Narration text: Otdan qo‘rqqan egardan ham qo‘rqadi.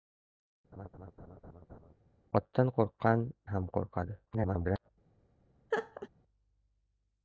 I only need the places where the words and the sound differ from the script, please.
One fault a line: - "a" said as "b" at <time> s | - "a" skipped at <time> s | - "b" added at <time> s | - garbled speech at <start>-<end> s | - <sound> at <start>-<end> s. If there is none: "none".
- laugh at 0.7-1.9 s
- "egardan" skipped at 3.2 s
- garbled speech at 4.3-4.9 s
- laugh at 5.7-6.1 s